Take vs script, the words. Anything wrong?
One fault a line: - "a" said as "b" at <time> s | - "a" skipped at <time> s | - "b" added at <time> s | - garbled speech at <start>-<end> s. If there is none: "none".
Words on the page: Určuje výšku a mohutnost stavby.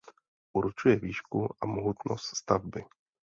none